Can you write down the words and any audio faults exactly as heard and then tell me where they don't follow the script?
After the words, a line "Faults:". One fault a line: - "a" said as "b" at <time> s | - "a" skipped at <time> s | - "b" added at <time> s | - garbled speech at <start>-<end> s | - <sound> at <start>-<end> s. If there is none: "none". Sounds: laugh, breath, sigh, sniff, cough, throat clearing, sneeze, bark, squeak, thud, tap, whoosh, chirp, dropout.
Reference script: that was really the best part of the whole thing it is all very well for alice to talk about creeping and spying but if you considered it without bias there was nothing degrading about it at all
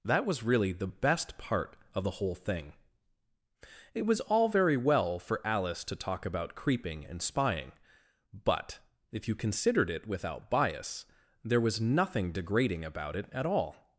that was really the best part of the whole thing it was all very well for alice to talk about creeping and spying but if you considered it without bias there was nothing degrading about it at all
Faults:
- "is" said as "was" at 4.1 s